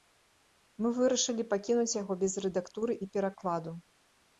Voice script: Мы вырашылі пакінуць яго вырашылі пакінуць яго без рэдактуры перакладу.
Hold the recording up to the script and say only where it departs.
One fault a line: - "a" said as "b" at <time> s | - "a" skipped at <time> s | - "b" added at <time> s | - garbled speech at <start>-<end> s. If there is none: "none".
- "вырашылі пакінуць яго" skipped at 2.1 s
- "і" added at 3.0 s